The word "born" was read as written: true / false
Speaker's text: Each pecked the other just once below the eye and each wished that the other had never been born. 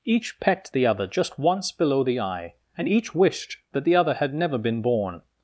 true